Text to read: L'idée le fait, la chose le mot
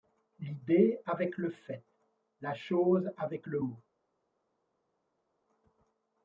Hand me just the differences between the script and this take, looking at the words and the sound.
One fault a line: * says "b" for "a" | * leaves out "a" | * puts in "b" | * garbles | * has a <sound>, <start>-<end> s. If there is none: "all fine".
* puts in "avec"
* puts in "avec"